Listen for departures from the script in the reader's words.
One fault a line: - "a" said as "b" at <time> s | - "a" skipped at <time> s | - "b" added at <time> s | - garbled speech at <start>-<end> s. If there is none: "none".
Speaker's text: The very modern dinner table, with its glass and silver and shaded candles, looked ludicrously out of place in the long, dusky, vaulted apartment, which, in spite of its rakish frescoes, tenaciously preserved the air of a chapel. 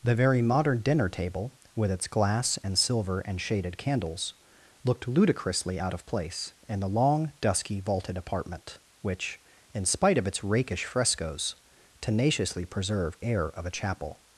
- "the" skipped at 13.2 s